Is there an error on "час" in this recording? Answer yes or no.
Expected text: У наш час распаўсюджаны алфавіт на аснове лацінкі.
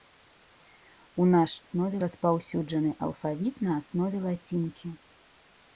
yes